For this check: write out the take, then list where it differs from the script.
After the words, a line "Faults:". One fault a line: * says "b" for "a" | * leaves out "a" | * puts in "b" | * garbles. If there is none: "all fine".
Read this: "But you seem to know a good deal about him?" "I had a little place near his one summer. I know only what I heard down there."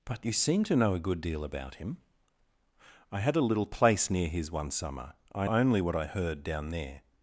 "But you seem to know a good deal about him?" "I had a little place near his one summer. I only what I heard down there."
Faults:
* leaves out "know"